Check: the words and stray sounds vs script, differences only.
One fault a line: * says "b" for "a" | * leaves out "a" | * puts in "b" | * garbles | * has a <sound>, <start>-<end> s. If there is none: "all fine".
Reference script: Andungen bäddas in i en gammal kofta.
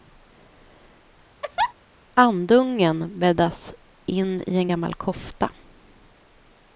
* has a laugh, 1.4-1.7 s